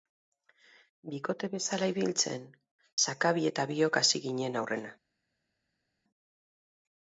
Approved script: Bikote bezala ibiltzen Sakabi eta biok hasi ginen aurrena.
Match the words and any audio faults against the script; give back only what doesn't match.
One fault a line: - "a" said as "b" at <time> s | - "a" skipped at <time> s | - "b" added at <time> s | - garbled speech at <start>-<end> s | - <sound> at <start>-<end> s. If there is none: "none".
none